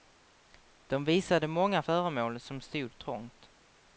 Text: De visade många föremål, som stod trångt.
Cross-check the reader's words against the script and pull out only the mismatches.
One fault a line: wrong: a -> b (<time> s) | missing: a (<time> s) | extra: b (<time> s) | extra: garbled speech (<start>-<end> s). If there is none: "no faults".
no faults